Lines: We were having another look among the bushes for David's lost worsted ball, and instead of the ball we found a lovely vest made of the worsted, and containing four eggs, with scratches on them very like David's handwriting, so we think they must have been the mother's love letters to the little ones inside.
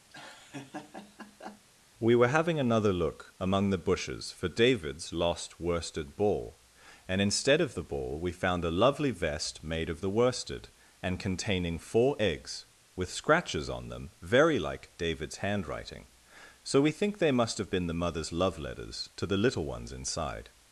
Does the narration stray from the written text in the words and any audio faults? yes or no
yes